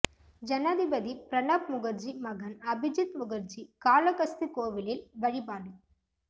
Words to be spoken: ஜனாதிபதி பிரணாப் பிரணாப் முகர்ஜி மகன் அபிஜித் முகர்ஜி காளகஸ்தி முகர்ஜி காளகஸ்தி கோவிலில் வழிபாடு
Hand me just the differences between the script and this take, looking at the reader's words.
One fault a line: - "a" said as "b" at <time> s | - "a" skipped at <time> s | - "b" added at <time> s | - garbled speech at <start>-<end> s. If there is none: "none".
- "பிரணாப்" skipped at 1.7 s
- "முகர்ஜி காளகஸ்தி" skipped at 4.5 s